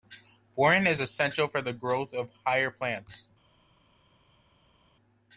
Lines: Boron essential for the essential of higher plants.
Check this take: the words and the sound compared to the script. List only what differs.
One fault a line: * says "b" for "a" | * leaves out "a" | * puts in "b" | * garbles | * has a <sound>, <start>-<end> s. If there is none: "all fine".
* puts in "is"
* says "growth" for "essential"